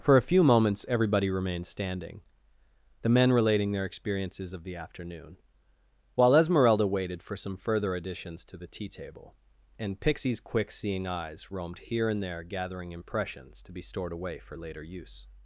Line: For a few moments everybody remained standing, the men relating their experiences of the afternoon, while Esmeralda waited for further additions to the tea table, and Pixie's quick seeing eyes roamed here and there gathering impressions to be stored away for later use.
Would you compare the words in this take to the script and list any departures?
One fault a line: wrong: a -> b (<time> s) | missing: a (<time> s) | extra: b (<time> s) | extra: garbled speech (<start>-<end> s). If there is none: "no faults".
extra: some (7.4 s)